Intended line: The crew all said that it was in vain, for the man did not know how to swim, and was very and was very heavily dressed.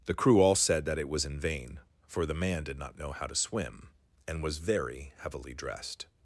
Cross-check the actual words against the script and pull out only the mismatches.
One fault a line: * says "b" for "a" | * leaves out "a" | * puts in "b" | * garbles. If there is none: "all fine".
* leaves out "and was very"